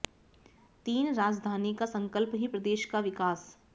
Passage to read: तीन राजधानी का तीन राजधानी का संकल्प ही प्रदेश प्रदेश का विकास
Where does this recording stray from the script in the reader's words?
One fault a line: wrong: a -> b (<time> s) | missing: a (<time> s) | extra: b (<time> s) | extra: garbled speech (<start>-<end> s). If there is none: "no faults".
missing: तीन राजधानी का (1.9 s)
missing: प्रदेश (2.9 s)